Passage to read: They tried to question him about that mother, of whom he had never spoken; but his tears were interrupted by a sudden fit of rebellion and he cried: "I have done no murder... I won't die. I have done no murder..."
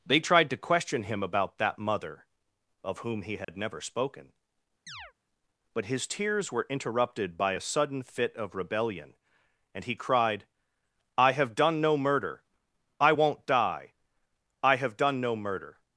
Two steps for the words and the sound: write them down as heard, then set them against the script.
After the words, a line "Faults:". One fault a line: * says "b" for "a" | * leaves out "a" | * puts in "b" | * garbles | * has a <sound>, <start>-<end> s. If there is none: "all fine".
They tried to question him about that mother, of whom he had never spoken; but his tears were interrupted by a sudden fit of rebellion and he cried: "I have done no murder... I won't die. I have done no murder..."
Faults:
* has a dropout, 3.4-3.5 s
* has a chirp, 4.9-5.1 s